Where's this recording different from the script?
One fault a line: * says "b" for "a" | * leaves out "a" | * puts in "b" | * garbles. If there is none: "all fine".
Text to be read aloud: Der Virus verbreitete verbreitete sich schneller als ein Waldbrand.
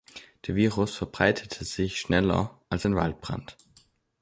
* leaves out "verbreitete"